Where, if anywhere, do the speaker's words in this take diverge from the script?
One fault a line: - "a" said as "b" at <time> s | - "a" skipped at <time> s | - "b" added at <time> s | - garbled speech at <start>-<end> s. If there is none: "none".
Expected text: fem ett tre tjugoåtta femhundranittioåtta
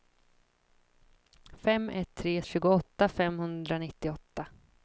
none